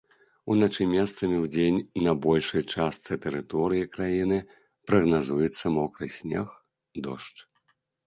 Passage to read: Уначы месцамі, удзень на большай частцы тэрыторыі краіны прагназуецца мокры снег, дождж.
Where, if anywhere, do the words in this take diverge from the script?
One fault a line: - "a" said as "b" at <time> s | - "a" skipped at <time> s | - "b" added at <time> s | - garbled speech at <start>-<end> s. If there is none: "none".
none